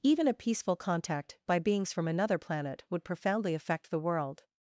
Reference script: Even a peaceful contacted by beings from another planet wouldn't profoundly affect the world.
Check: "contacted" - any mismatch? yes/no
yes